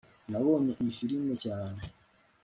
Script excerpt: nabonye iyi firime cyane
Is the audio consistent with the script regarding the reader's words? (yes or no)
yes